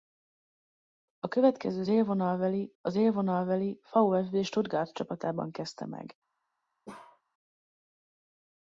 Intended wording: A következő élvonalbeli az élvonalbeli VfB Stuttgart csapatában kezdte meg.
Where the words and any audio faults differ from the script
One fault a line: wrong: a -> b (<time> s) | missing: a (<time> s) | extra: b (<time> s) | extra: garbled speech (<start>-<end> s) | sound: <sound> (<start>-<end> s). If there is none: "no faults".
sound: bark (6.9-7.2 s)